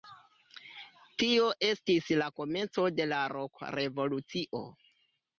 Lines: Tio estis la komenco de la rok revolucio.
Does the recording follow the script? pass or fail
pass